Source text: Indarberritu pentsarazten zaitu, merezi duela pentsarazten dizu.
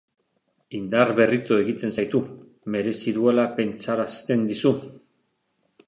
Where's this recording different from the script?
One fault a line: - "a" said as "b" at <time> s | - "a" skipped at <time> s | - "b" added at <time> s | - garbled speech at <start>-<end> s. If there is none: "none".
- "pentsarazten" said as "egiten" at 1.6 s